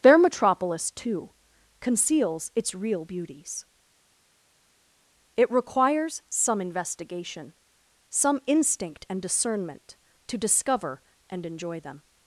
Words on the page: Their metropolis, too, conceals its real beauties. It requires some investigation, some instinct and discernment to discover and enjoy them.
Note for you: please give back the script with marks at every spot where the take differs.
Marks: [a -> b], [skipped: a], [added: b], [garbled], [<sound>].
Their metropolis, too, conceals its real beauties. It requires some investigation, some instinct and discernment to discover and enjoy them.